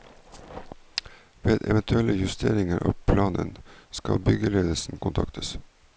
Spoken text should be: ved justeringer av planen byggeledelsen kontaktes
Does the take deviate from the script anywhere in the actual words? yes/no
yes